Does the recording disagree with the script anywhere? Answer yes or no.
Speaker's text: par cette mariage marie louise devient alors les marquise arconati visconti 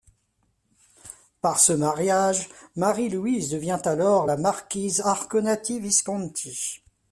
yes